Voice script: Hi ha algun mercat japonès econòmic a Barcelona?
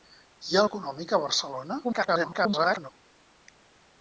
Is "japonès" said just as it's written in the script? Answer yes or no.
no